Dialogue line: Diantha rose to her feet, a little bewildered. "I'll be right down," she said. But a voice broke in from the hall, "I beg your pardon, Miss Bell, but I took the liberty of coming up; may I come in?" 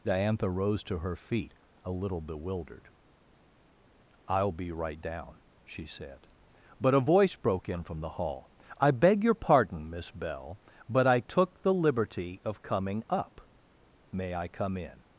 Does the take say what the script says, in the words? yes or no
yes